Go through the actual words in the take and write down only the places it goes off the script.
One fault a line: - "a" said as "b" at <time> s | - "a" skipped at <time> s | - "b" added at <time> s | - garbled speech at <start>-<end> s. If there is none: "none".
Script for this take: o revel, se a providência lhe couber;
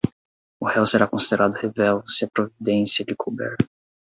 - "réu será considerado" added at 0.7 s